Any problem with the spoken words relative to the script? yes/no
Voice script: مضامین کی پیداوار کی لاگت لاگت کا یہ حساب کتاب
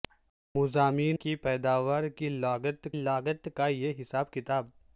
no